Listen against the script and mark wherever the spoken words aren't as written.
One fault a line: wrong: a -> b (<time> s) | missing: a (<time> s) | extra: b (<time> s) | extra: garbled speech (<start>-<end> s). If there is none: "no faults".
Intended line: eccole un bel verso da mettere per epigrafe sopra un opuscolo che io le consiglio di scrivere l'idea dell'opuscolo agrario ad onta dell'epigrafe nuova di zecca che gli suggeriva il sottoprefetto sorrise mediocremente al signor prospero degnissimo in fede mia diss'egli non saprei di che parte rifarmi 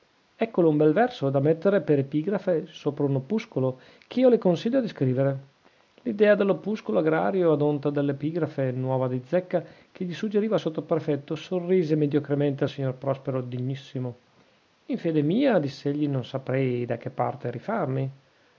wrong: di -> da (16.8 s)